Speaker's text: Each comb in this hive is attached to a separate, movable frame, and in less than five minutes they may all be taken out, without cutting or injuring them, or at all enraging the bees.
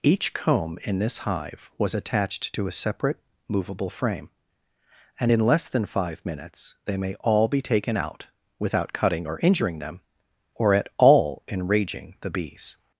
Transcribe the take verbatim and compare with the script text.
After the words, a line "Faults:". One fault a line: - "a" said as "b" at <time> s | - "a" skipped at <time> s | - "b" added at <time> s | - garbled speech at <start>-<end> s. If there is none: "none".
Each comb in this hive was attached to a separate, movable frame, and in less than five minutes they may all be taken out, without cutting or injuring them, or at all enraging the bees.
Faults:
- "is" said as "was" at 1.8 s